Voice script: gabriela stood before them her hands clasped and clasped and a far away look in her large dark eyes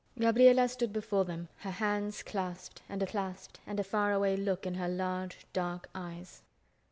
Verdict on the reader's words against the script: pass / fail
pass